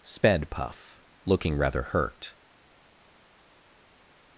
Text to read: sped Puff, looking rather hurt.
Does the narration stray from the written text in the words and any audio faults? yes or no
no